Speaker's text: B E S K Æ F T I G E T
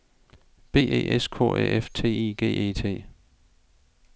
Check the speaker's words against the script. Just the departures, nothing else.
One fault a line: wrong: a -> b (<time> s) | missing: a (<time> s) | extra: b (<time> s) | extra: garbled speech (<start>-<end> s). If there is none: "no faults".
no faults